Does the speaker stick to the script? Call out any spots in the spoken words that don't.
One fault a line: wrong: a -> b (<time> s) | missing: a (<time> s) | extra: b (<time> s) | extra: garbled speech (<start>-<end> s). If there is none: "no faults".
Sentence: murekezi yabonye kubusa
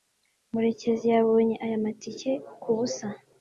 extra: aya matike (1.6 s)